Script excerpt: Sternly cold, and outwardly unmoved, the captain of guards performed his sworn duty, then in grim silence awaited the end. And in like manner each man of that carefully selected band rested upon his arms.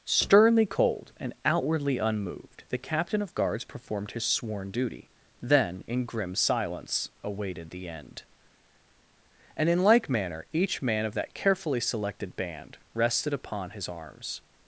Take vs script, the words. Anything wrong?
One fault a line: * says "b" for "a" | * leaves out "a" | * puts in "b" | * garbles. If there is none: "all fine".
all fine